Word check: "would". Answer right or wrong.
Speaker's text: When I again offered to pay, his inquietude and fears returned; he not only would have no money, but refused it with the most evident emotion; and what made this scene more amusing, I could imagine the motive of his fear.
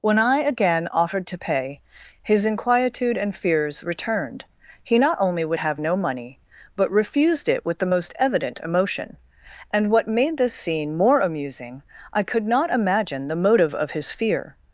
right